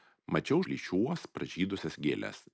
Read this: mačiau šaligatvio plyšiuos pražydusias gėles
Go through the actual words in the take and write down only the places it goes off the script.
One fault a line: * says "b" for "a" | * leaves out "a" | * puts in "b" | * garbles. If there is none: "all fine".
* leaves out "šaligatvio"